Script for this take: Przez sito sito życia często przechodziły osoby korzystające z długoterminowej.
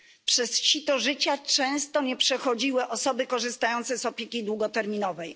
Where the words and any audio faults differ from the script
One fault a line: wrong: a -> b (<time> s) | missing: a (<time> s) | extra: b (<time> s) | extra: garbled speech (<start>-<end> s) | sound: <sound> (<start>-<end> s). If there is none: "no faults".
missing: sito (1.0 s)
extra: nie (2.0 s)
extra: opieki (4.1 s)